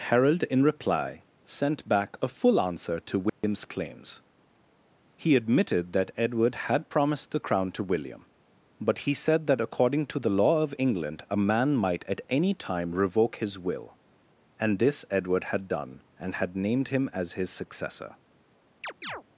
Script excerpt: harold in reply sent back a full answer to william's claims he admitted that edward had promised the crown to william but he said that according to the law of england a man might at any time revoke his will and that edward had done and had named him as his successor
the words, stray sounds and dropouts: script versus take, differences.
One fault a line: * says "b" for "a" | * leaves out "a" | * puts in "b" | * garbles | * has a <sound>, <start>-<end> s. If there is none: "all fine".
* has a dropout, 3.3-3.4 s
* says "this" for "that"
* has a chirp, 18.8-19.2 s